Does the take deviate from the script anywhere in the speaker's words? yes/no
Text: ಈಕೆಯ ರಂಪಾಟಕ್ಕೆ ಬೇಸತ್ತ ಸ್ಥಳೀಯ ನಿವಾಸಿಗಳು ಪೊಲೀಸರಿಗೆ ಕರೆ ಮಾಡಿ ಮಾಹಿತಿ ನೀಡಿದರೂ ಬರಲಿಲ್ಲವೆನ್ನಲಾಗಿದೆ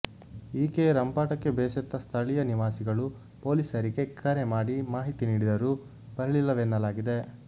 no